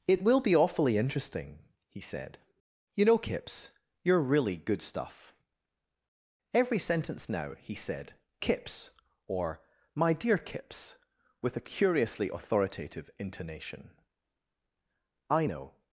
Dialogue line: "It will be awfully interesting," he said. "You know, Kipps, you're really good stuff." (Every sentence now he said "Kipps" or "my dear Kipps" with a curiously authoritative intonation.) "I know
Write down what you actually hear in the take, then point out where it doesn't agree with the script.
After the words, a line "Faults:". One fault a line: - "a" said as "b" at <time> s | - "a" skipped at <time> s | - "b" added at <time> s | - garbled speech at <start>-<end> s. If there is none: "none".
"It will be awfully interesting," he said. "You know, Kipps, you're really good stuff." (Every sentence now he said "Kipps" or "my dear Kipps" with a curiously authoritative intonation.) "I know
Faults:
none